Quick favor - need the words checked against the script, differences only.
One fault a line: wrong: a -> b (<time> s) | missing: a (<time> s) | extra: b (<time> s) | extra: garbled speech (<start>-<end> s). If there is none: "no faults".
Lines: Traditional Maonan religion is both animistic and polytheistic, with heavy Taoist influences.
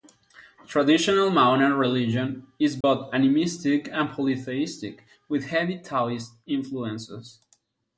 no faults